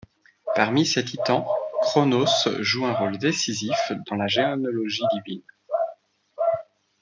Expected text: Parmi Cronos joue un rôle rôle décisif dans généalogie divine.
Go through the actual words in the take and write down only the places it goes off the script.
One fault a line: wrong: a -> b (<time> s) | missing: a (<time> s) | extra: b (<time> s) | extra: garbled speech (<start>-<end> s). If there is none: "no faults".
extra: ces titans (0.8 s)
missing: rôle (3.2 s)
extra: la (4.2 s)